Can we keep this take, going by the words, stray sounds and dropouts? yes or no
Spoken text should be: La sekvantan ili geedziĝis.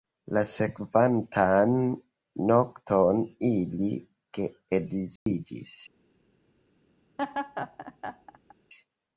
no